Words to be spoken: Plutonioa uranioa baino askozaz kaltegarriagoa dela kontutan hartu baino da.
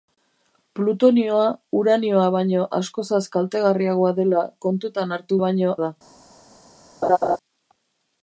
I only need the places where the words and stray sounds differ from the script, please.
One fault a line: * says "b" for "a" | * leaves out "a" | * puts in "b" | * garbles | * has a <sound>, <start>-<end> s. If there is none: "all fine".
* has a laugh, 7.0-7.4 s